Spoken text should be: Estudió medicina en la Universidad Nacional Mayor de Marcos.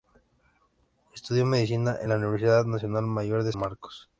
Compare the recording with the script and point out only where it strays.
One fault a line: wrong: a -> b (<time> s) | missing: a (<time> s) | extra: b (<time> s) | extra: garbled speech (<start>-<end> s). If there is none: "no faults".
no faults